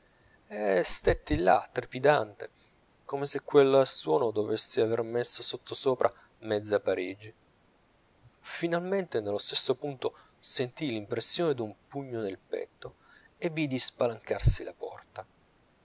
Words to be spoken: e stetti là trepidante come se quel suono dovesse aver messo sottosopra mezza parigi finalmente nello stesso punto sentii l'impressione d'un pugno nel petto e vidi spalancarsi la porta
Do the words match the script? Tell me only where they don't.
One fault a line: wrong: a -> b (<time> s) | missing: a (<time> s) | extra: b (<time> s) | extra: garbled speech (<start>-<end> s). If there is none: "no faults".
no faults